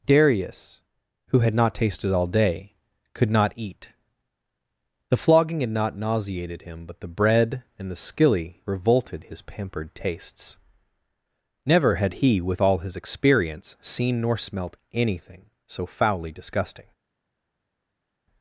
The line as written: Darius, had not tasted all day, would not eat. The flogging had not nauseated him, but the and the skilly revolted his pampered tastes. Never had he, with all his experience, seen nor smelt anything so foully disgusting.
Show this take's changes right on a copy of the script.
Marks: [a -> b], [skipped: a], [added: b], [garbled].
Darius, [added: who] had not tasted all day, [would -> could] not eat. The flogging had not nauseated him, but the [added: bread] and the skilly revolted his pampered tastes. Never had he, with all his experience, seen nor smelt anything so foully disgusting.